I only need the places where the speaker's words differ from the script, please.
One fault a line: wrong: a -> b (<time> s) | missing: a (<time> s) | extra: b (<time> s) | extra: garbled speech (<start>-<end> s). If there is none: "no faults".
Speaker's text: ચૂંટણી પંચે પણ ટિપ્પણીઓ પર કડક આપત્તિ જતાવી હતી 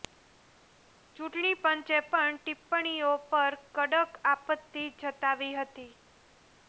no faults